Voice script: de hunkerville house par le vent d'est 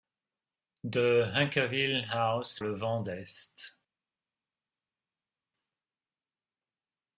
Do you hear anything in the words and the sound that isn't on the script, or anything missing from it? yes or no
yes